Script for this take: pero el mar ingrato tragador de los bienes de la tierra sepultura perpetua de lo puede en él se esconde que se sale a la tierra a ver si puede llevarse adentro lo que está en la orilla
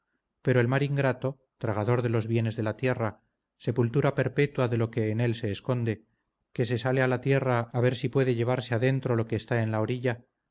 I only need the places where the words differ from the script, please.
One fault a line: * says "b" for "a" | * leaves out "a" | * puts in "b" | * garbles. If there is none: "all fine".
* says "que" for "puede"